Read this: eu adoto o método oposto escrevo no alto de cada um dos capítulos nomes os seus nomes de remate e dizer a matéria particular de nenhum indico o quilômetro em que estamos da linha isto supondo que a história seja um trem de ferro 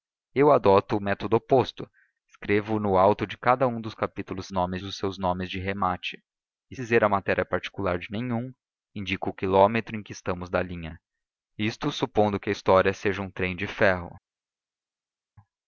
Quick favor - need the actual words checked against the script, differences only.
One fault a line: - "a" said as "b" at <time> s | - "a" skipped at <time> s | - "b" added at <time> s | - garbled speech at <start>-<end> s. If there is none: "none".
none